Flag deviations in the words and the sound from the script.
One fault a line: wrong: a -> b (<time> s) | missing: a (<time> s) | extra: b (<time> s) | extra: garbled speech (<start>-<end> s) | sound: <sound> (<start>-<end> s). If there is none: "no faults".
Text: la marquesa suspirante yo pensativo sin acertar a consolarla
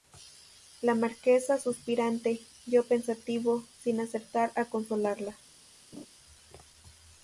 sound: laugh (5.9-6.1 s)